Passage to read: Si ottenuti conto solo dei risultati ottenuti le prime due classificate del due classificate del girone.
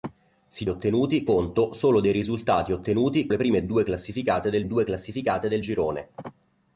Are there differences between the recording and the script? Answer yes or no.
no